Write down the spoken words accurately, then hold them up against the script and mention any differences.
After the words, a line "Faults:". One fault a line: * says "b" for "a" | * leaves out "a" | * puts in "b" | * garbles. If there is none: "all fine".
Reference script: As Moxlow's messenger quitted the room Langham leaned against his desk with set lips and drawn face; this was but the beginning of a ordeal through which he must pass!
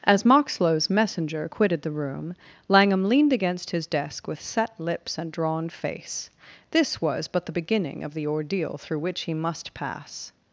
As Moxlow's messenger quitted the room Langham leaned against his desk with set lips and drawn face; this was but the beginning of the ordeal through which he must pass!
Faults:
* says "the" for "a"